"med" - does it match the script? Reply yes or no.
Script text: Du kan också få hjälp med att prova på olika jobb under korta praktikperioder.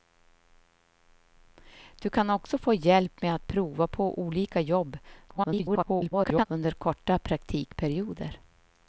yes